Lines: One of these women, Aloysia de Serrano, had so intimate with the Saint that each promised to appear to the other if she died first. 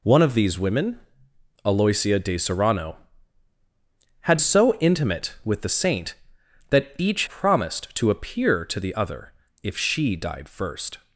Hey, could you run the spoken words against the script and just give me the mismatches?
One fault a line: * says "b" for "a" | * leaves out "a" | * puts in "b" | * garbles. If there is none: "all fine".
all fine